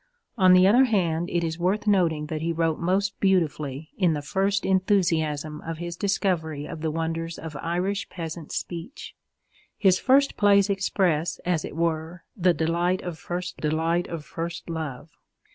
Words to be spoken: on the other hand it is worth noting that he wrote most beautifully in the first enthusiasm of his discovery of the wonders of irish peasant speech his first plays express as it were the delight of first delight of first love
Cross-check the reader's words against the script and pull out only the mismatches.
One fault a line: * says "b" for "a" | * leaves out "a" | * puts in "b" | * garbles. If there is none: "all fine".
all fine